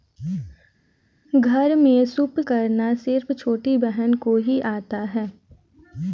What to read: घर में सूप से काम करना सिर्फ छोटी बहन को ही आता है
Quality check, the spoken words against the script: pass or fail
fail